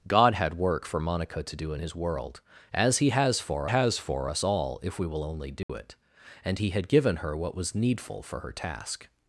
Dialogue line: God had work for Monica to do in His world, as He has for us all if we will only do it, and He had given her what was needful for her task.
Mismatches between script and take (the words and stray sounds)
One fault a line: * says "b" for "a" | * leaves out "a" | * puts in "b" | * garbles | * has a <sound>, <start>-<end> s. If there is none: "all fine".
* puts in "has for"
* has a dropout, 5.6-5.7 s